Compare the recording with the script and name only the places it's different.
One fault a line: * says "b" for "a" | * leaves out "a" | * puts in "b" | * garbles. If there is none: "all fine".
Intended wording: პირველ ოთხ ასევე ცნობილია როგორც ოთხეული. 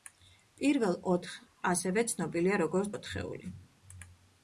all fine